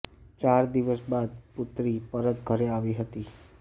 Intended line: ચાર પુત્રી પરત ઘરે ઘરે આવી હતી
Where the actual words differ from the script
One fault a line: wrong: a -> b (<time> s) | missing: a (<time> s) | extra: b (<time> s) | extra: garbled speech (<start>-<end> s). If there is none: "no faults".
extra: દિવસ બાદ (0.7 s)
missing: ઘરે (2.7 s)